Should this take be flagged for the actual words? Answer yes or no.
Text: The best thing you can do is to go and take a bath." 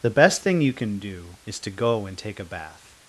no